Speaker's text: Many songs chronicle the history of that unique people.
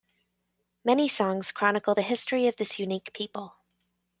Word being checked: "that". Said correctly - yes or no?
no